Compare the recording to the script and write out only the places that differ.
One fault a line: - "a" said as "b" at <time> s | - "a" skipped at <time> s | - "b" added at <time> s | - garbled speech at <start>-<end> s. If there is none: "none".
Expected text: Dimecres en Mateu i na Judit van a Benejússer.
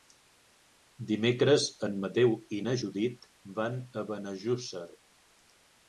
none